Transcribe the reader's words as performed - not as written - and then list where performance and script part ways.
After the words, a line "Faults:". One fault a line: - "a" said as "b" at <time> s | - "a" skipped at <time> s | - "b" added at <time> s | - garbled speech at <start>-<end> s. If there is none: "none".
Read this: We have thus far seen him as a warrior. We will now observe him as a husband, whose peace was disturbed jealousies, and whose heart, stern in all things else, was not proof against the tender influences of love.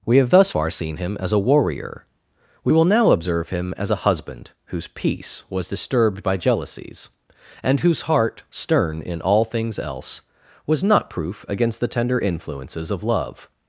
We have thus far seen him as a warrior. We will now observe him as a husband, whose peace was disturbed by jealousies, and whose heart, stern in all things else, was not proof against the tender influences of love.
Faults:
- "by" added at 6.2 s